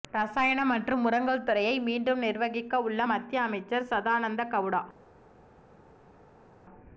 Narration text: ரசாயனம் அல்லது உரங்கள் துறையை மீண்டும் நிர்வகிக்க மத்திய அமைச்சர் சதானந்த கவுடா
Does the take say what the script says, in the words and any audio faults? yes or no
no